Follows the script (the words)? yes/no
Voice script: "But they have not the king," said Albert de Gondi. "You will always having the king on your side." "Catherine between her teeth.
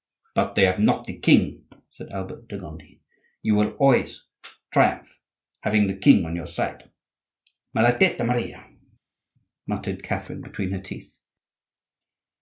no